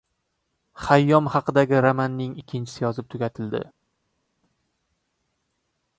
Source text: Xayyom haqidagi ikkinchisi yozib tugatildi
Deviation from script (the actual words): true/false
true